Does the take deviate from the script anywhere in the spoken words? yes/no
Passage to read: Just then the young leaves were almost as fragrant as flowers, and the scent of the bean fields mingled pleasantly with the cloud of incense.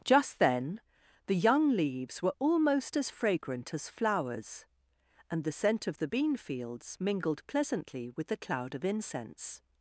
no